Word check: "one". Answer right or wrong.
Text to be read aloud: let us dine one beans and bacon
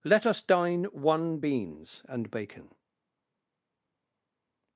right